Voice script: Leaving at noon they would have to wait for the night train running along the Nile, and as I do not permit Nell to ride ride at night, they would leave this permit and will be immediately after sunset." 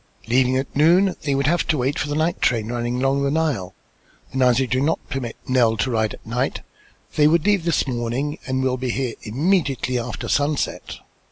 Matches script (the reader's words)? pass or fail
fail